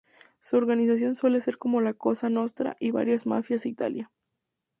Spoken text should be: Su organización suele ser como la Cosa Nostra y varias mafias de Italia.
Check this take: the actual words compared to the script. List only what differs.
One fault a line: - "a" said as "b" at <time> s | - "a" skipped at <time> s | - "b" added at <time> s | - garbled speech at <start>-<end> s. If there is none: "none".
none